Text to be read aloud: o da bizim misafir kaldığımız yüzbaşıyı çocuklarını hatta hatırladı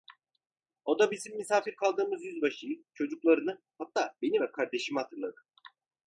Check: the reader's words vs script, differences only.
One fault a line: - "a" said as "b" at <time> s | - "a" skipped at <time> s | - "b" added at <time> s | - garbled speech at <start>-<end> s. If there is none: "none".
- "beni ve kardeşimi" added at 4.2 s